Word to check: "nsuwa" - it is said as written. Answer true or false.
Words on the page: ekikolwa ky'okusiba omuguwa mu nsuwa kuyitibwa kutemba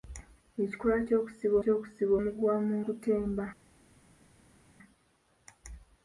false